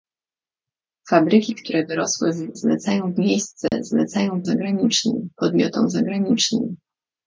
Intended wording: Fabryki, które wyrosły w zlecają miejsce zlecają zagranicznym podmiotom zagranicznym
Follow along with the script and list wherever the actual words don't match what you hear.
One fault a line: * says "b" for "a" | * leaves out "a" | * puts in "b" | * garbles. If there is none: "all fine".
all fine